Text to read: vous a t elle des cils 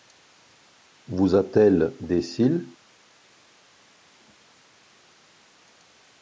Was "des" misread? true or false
false